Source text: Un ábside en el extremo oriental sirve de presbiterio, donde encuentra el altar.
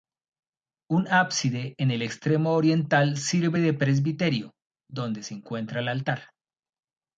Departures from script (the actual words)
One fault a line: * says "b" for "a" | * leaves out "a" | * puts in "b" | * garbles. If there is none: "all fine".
* puts in "se"